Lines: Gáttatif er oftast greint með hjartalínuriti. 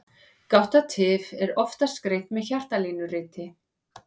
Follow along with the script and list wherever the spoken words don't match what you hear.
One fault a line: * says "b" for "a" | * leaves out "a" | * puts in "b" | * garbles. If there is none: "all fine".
all fine